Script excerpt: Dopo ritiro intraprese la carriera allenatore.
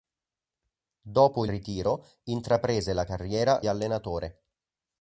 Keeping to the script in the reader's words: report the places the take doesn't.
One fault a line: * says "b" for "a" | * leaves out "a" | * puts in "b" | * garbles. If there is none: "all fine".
all fine